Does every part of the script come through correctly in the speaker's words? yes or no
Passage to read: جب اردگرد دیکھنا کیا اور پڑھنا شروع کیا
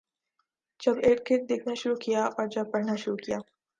no